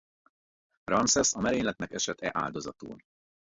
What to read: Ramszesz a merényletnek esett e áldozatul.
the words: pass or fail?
pass